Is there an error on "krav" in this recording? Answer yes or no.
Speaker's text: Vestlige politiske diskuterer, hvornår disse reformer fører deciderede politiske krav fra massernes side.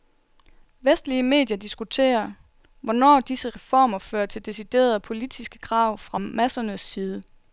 no